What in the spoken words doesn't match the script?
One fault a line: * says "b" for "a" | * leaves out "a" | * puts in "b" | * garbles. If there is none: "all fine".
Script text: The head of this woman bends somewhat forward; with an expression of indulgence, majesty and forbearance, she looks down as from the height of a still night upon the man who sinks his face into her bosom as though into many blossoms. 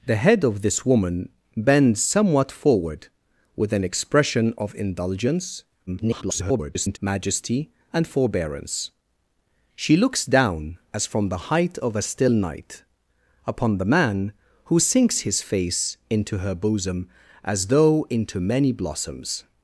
* garbles